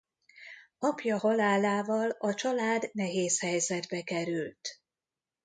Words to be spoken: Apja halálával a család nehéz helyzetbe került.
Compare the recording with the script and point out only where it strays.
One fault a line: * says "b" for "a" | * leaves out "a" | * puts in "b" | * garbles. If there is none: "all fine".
all fine